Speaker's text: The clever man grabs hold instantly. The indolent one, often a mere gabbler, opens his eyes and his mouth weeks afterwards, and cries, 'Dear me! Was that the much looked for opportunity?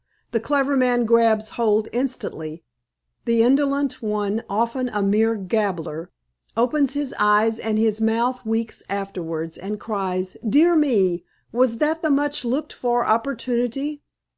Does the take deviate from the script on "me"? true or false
false